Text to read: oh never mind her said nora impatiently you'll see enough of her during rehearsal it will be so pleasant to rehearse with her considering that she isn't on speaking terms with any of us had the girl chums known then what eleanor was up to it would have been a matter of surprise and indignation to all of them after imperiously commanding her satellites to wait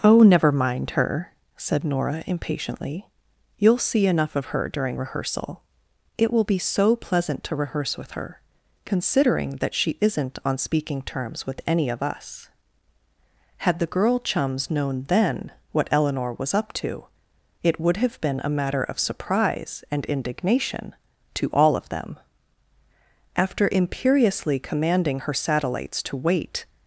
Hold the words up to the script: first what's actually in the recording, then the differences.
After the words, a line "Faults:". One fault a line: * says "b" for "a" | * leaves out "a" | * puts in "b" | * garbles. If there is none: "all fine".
oh never mind her said nora impatiently you'll see enough of her during rehearsal it will be so pleasant to rehearse with her considering that she isn't on speaking terms with any of us had the girl chums known then what eleanor was up to it would have been a matter of surprise and indignation to all of them after imperiously commanding her satellites to wait
Faults:
all fine